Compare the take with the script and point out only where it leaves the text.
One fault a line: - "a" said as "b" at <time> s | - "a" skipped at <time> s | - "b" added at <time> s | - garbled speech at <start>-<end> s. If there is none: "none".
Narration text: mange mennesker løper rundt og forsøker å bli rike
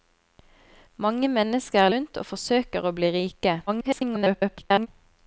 - "løper" skipped at 1.9 s
- garbled speech at 3.7-4.9 s